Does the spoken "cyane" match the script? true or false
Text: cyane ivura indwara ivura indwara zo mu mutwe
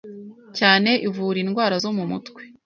true